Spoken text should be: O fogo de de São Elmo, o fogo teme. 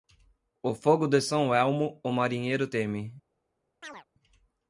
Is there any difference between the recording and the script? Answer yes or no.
yes